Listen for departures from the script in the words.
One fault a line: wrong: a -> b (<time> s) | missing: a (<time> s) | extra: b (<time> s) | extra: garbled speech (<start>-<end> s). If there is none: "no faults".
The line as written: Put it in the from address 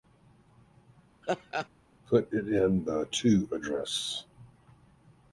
wrong: from -> to (3.1 s)